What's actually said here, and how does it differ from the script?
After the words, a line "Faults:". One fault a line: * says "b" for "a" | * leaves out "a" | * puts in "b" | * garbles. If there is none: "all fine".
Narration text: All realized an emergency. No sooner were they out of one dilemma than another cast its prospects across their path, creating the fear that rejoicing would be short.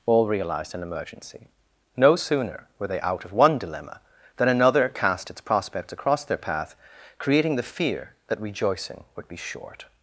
All realized an emergency. No sooner were they out of one dilemma than another cast its prospects across their path, creating the fear that rejoicing would be short.
Faults:
all fine